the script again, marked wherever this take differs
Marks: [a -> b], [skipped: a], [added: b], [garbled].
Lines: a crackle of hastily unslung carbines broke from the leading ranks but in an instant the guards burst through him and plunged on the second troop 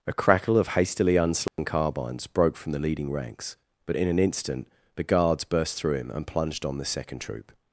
a crackle of hastily unslung carbines broke from the leading ranks but in an instant the guards burst through him and plunged on the second troop